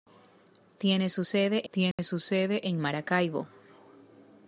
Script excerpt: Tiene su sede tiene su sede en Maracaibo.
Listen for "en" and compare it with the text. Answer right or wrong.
right